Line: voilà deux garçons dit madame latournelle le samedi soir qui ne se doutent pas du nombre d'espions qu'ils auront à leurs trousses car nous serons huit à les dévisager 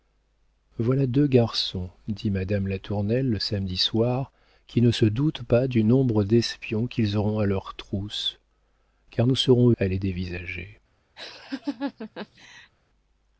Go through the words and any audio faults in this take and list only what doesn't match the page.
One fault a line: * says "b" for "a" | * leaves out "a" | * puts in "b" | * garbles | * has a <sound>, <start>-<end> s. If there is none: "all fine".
* leaves out "huit"
* has a laugh, 11.2-12.7 s